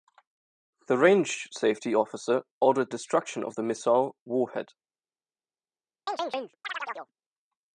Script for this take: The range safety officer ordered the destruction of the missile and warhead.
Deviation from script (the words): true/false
true